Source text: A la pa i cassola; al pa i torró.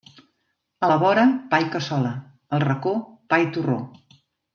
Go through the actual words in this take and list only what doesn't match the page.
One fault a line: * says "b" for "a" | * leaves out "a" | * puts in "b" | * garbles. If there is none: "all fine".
* puts in "vora"
* puts in "racó"